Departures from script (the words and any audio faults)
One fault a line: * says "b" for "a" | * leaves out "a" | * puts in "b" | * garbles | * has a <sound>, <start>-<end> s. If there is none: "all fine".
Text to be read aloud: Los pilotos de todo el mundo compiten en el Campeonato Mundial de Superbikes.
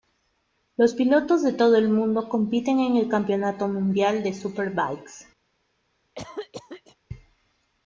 * has a cough, 6.1-7.0 s